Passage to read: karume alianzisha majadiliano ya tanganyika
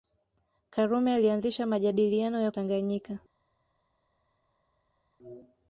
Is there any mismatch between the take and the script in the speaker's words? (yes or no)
no